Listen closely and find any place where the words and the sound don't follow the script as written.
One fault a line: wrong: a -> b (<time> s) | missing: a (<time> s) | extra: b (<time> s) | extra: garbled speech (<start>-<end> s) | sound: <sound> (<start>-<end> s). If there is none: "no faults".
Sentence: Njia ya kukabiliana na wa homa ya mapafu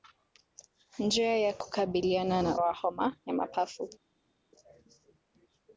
no faults